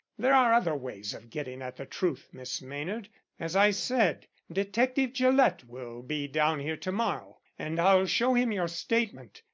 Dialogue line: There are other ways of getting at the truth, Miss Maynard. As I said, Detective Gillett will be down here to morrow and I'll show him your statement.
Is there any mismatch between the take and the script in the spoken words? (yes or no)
no